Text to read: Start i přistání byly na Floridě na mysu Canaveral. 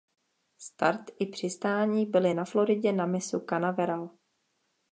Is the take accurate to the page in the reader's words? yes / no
yes